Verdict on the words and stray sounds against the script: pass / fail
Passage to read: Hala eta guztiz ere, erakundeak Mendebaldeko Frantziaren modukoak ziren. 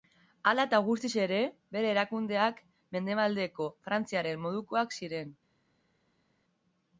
fail